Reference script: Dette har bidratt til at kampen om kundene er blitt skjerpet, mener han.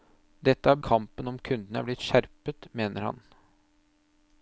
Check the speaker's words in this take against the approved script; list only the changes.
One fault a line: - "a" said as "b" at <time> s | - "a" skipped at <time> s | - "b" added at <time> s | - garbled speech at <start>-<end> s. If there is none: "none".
- "bidratt til at" skipped at 0.8 s